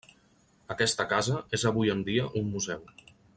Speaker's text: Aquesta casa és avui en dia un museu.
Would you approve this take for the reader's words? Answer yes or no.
yes